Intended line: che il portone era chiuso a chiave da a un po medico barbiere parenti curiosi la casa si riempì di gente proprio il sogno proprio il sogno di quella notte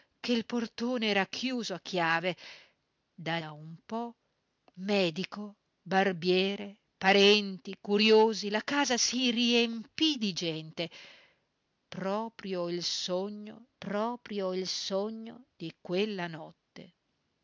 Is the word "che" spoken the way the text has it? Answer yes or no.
yes